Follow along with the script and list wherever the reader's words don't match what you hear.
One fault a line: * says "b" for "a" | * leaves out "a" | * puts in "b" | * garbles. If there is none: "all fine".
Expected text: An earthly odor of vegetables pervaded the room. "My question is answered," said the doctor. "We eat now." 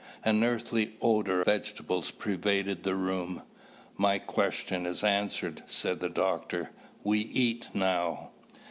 * leaves out "of"